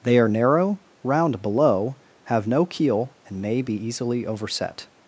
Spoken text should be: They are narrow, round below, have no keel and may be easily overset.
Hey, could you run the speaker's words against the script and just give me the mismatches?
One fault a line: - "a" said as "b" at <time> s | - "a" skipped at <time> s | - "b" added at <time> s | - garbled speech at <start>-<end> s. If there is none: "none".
none